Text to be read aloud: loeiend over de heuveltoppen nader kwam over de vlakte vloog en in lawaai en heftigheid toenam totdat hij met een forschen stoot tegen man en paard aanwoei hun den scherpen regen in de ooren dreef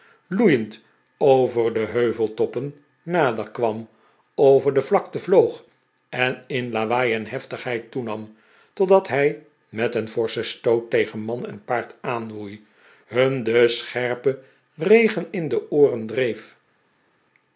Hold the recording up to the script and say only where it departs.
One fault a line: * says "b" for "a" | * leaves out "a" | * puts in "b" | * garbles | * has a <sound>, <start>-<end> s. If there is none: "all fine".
all fine